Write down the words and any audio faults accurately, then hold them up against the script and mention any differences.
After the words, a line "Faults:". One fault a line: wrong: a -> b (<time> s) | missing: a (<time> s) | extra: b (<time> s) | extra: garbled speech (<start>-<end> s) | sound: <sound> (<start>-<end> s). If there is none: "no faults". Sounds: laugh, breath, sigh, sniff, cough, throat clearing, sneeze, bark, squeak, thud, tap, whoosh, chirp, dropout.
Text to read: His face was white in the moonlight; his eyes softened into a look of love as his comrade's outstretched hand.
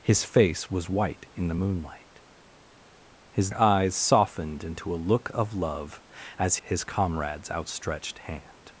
His face was white in the moonlight; his eyes softened into a look of love as his comrade's outstretched hand.
Faults:
no faults